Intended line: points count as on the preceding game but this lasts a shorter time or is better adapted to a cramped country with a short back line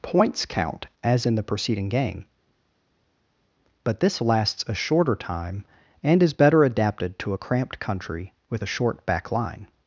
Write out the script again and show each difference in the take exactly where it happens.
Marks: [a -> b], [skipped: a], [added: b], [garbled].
points count as [on -> in] the preceding game but this lasts a shorter time [or -> and] is better adapted to a cramped country with a short back line